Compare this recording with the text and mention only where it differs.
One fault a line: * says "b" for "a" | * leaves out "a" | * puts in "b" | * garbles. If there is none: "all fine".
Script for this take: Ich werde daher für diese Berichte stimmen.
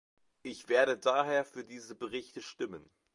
all fine